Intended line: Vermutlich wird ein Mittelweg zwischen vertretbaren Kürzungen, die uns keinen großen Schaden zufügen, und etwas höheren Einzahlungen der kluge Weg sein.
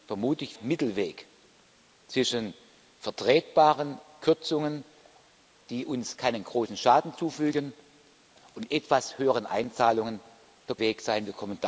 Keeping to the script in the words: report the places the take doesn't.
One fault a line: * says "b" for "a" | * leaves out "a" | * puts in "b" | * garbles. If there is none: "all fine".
* leaves out "wird ein"
* leaves out "kluge"